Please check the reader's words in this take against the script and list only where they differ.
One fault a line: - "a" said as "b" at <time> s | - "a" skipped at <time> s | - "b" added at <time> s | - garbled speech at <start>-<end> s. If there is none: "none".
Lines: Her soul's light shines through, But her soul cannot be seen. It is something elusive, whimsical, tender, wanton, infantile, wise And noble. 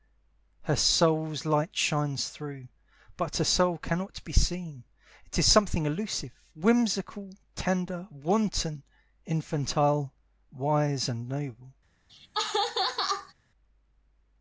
none